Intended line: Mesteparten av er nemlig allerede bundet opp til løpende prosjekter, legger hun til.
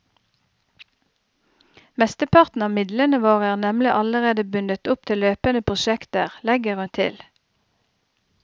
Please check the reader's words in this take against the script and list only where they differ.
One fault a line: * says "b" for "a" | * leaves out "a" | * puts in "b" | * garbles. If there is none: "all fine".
* puts in "midlene våre"